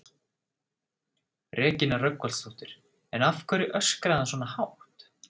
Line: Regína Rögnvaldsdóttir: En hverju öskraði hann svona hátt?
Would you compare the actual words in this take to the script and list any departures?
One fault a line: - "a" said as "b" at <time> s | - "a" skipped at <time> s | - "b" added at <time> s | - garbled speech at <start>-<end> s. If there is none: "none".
- "af" added at 3.3 s